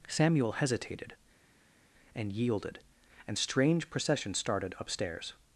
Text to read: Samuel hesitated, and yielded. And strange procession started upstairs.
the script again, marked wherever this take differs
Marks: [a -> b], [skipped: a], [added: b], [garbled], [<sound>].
Samuel hesitated, and yielded. And strange procession started upstairs.